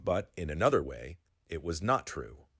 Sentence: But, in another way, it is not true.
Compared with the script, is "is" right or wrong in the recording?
wrong